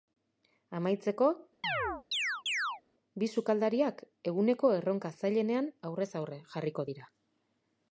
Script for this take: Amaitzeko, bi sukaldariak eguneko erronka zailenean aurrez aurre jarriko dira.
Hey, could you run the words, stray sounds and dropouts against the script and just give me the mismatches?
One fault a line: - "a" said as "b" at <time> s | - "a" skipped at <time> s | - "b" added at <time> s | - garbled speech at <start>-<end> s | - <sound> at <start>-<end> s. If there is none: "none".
- chirp at 1.6-2.8 s